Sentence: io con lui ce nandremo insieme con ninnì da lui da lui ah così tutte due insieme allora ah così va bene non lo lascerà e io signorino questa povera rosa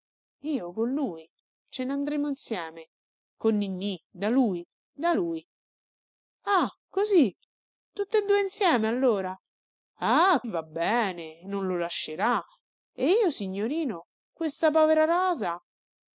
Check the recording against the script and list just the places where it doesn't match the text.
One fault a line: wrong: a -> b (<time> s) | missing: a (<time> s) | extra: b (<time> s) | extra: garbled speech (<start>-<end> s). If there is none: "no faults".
missing: così (10.4 s)